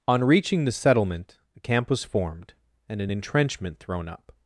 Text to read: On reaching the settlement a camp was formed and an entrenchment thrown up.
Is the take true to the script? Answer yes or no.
yes